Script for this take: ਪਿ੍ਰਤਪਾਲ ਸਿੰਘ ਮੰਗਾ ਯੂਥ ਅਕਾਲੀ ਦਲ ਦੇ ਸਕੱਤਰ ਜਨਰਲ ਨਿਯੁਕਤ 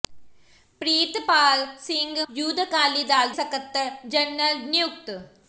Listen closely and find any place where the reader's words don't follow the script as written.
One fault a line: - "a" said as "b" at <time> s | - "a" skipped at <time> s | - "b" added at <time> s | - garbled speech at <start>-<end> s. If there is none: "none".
- "ਮੰਗਾ" skipped at 2.2 s
- "ਦੇ" skipped at 3.3 s